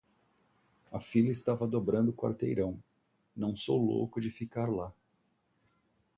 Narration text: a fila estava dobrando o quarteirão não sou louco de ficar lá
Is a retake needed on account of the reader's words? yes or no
no